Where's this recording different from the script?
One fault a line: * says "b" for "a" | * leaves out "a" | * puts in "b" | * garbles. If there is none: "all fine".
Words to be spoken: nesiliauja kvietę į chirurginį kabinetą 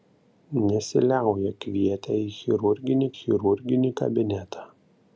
* puts in "chirurginį"